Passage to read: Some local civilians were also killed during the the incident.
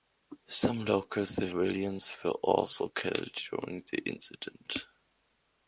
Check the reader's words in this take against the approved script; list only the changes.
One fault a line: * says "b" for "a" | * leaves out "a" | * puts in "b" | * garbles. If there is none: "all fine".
* leaves out "the"